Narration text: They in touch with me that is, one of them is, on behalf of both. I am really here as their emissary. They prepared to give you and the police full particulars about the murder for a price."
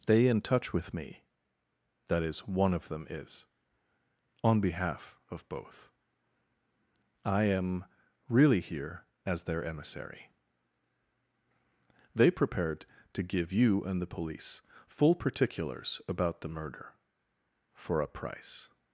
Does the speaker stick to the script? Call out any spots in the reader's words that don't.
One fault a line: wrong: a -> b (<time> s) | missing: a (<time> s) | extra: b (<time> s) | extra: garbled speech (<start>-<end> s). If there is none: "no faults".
no faults